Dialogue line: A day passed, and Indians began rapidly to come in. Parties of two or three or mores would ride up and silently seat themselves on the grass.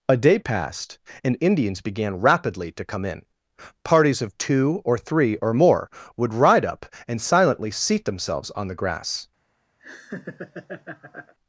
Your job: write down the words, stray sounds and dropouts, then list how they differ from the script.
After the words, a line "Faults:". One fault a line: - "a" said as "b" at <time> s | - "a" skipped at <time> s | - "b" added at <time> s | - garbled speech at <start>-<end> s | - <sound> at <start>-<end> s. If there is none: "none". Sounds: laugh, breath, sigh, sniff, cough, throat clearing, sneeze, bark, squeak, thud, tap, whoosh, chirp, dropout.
A day passed, and Indians began rapidly to come in. Parties of two or three or more would ride up and silently seat themselves on the grass.
Faults:
- "mores" said as "more" at 5.5 s
- laugh at 9.8-11.3 s